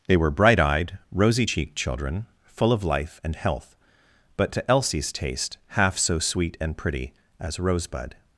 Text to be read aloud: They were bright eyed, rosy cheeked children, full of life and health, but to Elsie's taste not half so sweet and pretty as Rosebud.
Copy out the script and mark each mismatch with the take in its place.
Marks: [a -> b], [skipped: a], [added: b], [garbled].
They were bright eyed, rosy cheeked children, full of life and health, but to Elsie's taste [skipped: not] half so sweet and pretty as Rosebud.